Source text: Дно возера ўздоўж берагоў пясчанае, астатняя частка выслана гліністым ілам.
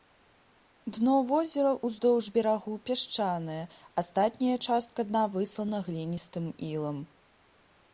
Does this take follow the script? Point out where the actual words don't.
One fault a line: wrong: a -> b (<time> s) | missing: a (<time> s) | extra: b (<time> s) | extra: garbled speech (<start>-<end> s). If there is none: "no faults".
extra: дна (5.1 s)